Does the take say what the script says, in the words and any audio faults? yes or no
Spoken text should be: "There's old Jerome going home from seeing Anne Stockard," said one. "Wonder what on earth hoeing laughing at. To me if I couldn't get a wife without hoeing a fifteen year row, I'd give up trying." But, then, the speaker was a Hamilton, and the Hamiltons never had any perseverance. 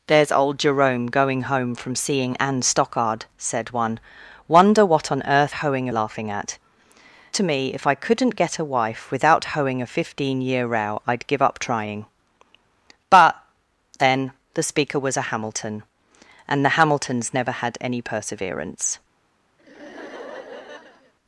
no